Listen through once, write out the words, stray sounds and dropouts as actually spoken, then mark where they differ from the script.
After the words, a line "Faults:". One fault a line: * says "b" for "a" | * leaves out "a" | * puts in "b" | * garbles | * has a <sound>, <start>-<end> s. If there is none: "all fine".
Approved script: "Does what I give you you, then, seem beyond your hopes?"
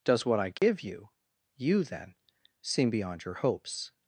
"Does what I give you you, then, seem beyond your hopes?"
Faults:
* has a dropout, 0.6-0.6 s